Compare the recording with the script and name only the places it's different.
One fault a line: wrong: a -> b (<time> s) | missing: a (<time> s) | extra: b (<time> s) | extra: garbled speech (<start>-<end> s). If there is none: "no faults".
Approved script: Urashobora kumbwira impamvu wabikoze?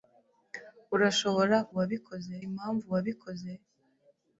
wrong: kumbwira -> wabikoze (1.8 s)